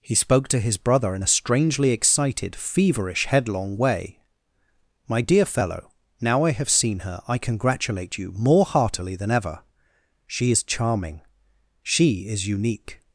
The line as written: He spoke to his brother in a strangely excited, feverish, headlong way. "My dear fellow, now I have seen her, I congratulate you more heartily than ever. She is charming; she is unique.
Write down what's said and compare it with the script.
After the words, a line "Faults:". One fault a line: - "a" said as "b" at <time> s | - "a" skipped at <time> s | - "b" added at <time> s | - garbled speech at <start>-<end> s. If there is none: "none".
He spoke to his brother in a strangely excited, feverish, headlong way. "My dear fellow, now I have seen her, I congratulate you more heartily than ever. She is charming; she is unique.
Faults:
none